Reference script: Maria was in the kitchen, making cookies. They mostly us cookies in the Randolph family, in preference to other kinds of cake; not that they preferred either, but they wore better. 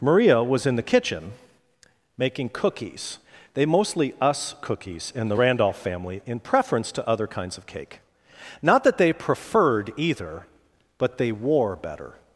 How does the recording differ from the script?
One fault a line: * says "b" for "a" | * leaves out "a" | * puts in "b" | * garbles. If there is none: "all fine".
all fine